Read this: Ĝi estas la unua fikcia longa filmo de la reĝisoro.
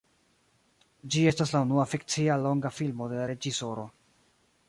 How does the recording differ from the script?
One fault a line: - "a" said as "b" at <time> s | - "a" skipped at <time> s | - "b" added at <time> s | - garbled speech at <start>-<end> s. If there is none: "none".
none